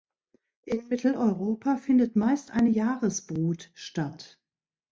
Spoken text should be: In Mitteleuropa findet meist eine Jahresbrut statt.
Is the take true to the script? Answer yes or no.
yes